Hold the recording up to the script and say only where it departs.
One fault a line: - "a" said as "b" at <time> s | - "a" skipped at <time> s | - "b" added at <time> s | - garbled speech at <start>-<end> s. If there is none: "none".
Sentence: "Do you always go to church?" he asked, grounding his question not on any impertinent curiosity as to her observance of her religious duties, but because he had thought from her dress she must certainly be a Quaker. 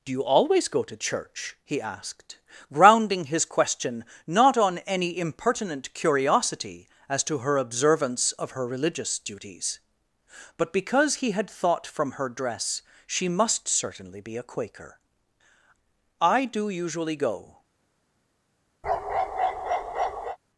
- "I do usually go" added at 16.2 s